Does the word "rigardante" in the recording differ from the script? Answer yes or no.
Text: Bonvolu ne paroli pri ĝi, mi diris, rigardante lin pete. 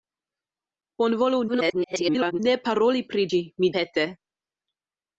yes